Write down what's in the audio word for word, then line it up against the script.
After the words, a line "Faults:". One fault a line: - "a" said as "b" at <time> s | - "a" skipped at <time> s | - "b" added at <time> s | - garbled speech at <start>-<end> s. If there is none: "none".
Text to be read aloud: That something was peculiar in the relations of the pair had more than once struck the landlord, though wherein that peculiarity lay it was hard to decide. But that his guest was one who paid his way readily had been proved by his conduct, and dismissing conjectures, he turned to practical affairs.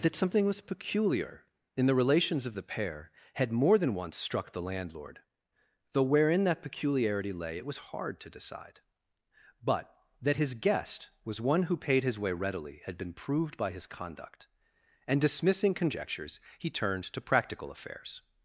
That something was peculiar in the relations of the pair had more than once struck the landlord, though wherein that peculiarity lay it was hard to decide. But that his guest was one who paid his way readily had been proved by his conduct, and dismissing conjectures, he turned to practical affairs.
Faults:
none